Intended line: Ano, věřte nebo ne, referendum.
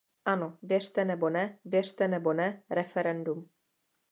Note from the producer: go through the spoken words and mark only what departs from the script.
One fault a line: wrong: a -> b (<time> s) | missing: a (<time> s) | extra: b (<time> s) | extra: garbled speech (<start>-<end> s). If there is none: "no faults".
extra: věřte nebo ne (1.6 s)